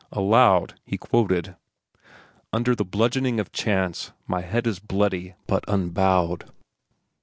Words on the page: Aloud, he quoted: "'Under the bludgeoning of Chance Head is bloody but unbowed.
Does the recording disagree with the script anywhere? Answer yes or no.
yes